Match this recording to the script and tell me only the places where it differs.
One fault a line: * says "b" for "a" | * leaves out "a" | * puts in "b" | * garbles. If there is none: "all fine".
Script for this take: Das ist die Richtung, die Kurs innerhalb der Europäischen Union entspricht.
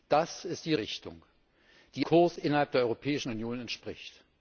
all fine